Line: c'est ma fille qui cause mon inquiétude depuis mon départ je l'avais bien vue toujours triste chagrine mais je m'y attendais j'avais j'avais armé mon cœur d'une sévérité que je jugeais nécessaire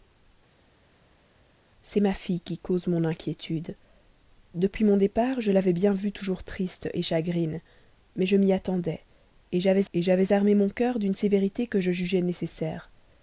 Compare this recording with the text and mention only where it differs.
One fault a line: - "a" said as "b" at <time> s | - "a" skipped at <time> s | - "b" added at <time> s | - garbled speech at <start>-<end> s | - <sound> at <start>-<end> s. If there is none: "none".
none